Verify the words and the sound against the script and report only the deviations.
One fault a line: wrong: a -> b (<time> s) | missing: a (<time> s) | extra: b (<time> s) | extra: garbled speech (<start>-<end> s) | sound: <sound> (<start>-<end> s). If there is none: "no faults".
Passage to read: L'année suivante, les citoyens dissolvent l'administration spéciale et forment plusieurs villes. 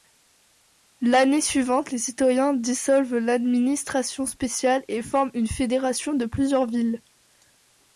extra: une fédération de (5.3 s)